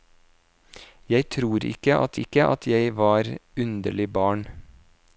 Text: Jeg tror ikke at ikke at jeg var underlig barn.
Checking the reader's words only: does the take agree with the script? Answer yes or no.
yes